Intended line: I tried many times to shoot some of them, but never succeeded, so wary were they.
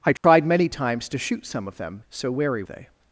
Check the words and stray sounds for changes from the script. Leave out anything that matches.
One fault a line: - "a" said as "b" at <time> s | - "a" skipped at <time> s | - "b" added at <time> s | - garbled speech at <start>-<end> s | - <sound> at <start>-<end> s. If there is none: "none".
- dropout at 0.2-0.2 s
- "but never succeeded" skipped at 2.0 s
- "were" skipped at 2.6 s